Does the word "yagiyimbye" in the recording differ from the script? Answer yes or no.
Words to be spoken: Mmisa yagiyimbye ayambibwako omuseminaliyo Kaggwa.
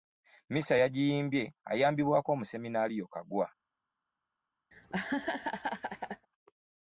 no